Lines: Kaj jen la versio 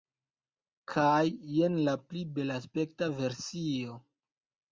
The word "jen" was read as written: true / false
true